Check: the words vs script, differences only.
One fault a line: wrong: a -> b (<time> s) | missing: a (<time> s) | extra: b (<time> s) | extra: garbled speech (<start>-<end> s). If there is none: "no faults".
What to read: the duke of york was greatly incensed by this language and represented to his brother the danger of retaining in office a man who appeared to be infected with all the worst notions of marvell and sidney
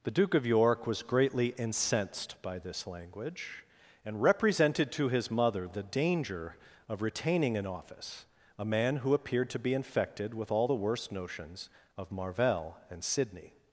wrong: brother -> mother (5.3 s)